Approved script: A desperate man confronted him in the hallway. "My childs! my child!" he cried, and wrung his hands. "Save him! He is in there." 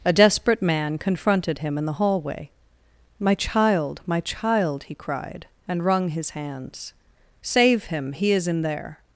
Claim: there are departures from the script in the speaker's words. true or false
true